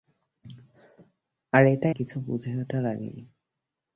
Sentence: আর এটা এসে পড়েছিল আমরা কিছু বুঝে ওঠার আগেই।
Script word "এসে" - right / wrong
wrong